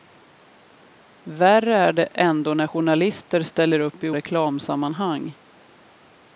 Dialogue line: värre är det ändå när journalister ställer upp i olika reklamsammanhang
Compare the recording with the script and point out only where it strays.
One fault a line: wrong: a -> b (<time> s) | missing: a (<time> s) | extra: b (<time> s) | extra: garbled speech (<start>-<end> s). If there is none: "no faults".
missing: olika (4.1 s)